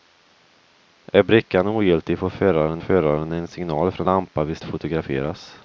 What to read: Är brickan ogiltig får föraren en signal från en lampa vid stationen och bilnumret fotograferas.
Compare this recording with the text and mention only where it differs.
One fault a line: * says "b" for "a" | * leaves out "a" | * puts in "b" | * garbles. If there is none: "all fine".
* puts in "föraren"
* leaves out "en"
* leaves out "stationen och bilnumret"